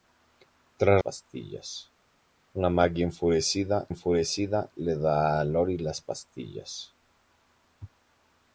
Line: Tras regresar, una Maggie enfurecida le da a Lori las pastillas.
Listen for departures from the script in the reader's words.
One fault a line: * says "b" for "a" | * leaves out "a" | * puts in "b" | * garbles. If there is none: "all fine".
* says "pastillas" for "regresar"
* puts in "enfurecida"